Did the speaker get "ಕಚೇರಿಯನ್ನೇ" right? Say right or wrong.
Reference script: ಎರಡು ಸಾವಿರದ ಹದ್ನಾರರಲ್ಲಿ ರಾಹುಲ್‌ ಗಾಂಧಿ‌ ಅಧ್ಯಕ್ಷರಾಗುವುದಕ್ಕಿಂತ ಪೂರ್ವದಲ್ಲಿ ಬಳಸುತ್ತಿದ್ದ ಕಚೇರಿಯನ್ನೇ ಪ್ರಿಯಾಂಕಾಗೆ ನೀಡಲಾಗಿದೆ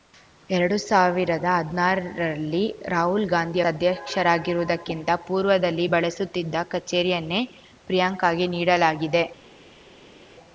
right